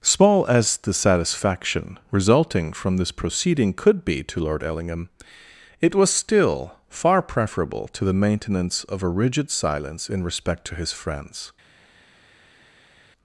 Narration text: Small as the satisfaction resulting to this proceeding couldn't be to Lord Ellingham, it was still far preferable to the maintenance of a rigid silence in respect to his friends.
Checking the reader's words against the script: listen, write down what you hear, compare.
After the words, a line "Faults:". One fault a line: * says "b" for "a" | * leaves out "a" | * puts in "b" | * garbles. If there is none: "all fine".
Small as the satisfaction resulting from this proceeding could be to Lord Ellingham, it was still far preferable to the maintenance of a rigid silence in respect to his friends.
Faults:
* says "from" for "to"
* says "could" for "couldn't"